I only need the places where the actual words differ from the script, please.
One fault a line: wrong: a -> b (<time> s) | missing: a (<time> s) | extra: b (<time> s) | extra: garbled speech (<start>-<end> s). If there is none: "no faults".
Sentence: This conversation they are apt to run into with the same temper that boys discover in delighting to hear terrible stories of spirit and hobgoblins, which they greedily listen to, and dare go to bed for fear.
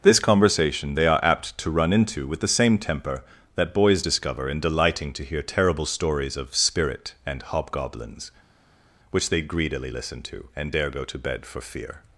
no faults